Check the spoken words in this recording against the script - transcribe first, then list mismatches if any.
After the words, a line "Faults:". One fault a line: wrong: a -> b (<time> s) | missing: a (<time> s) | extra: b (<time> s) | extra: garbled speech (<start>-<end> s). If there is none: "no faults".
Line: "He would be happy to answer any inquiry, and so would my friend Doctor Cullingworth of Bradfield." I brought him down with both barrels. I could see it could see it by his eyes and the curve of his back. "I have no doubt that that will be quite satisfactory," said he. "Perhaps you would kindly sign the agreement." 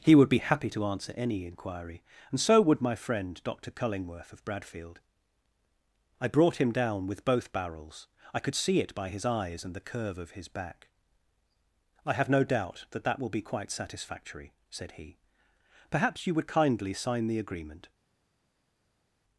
"He would be happy to answer any inquiry, and so would my friend Doctor Cullingworth of Bradfield." I brought him down with both barrels. I could see it by his eyes and the curve of his back. "I have no doubt that that will be quite satisfactory," said he. "Perhaps you would kindly sign the agreement."
Faults:
missing: could see it (8.9 s)